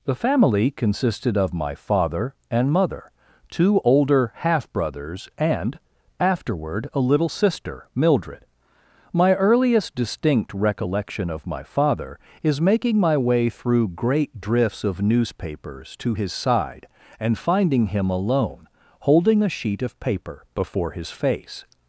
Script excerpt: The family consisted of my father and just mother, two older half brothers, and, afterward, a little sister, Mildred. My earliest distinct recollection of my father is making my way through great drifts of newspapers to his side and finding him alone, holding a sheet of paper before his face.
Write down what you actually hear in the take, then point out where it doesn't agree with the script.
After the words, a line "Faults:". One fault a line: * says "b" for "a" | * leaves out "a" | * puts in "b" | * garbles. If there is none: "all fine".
The family consisted of my father and mother, two older half brothers, and, afterward, a little sister, Mildred. My earliest distinct recollection of my father is making my way through great drifts of newspapers to his side and finding him alone, holding a sheet of paper before his face.
Faults:
* leaves out "just"